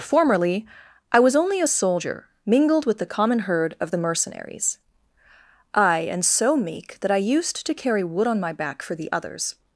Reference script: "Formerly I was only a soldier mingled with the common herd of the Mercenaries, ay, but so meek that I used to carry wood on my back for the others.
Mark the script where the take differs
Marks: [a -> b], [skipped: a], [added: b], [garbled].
"Formerly I was only a soldier mingled with the common herd of the Mercenaries, ay, [but -> and] so meek that I used to carry wood on my back for the others.